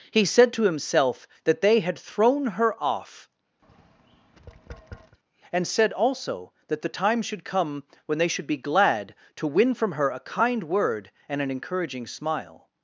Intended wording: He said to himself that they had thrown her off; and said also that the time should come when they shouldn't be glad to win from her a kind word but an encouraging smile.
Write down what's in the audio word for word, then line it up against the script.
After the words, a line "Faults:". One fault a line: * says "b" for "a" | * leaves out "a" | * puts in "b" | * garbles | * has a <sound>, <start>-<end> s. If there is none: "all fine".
He said to himself that they had thrown her off; and said also that the time should come when they should be glad to win from her a kind word and an encouraging smile.
Faults:
* has a tap, 3.6-5.2 s
* says "should" for "shouldn't"
* says "and" for "but"